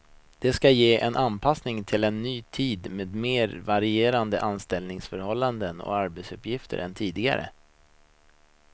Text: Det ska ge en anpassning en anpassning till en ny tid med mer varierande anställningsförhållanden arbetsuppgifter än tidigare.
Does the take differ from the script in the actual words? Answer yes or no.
yes